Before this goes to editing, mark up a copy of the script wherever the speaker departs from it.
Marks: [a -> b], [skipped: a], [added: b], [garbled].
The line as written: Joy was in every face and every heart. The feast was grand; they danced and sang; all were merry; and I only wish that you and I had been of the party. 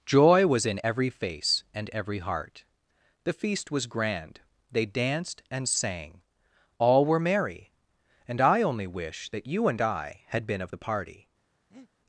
Joy was in every face and every heart. The feast was grand; they danced and sang; all were merry; and I only wish that you and I had been of the party.